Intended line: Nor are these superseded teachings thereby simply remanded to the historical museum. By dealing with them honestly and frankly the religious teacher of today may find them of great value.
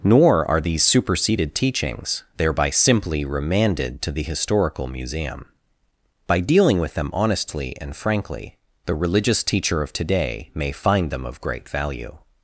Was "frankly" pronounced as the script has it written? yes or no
yes